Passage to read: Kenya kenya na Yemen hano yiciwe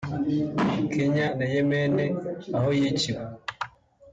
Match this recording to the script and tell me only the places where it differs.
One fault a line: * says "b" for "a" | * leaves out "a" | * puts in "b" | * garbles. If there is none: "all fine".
* leaves out "kenya"
* says "aho" for "hano"